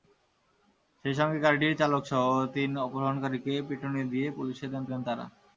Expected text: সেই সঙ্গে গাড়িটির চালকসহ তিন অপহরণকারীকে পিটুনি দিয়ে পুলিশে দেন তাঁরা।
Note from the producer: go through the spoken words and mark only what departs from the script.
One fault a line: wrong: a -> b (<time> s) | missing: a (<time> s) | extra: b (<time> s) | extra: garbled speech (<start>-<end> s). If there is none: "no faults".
extra: দেন (4.8 s)